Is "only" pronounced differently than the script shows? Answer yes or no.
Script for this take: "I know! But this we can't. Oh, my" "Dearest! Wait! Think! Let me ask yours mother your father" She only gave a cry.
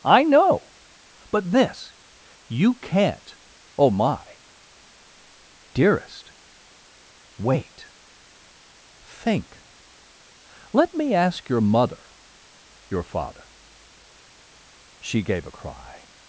yes